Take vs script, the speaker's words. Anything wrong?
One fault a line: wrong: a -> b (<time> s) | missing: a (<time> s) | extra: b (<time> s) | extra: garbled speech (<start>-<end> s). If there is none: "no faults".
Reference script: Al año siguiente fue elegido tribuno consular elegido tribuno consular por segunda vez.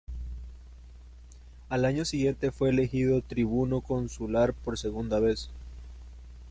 missing: elegido tribuno consular (4.5 s)